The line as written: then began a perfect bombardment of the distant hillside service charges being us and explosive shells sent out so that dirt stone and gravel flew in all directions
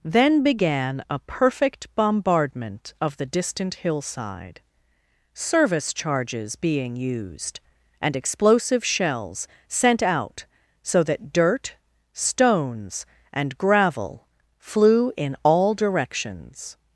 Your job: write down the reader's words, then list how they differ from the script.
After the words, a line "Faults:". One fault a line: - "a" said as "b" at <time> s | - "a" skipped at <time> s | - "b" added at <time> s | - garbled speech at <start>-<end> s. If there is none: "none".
then began a perfect bombardment of the distant hillside service charges being used and explosive shells sent out so that dirt stones and gravel flew in all directions
Faults:
- "us" said as "used" at 7.0 s
- "stone" said as "stones" at 12.1 s